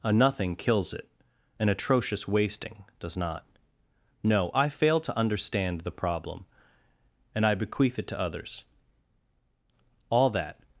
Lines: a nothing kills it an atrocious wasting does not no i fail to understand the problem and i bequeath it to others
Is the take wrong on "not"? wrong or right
right